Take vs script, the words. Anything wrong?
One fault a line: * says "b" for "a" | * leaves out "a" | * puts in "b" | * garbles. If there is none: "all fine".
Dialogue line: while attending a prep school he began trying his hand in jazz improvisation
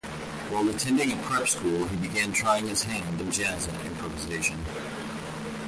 all fine